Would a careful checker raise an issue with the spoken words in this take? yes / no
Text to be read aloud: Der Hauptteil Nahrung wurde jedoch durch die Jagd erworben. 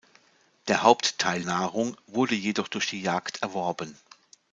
no